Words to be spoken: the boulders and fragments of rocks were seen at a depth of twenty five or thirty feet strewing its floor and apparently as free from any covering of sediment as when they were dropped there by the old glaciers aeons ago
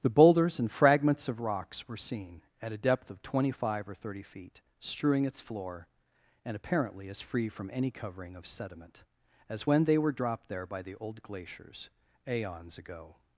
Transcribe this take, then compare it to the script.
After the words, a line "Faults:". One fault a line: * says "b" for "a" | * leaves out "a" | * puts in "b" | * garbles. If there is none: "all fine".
the boulders and fragments of rocks were seen at a depth of twenty five or thirty feet strewing its floor and apparently as free from any covering of sediment as when they were dropped there by the old glaciers aeons ago
Faults:
all fine